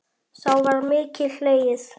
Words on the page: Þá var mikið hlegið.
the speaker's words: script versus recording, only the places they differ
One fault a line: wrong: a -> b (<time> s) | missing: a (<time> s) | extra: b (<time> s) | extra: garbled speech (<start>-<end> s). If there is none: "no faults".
no faults